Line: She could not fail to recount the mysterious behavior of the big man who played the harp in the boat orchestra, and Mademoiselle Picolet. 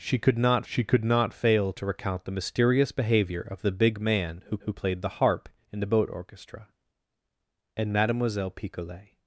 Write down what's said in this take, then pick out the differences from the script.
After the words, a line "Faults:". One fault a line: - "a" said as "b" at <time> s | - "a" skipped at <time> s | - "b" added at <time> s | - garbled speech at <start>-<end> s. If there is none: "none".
She could not she could not fail to recount the mysterious behavior of the big man who who played the harp in the boat orchestra, and Mademoiselle Picolet.
Faults:
- "she could not" added at 0.7 s
- "who" added at 4.6 s